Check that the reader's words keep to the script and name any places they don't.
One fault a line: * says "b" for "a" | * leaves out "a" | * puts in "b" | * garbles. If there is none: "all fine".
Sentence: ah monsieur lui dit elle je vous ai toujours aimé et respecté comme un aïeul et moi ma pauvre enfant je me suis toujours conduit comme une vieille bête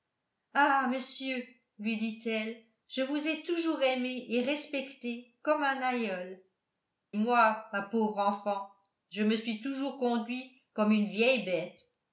* leaves out "et"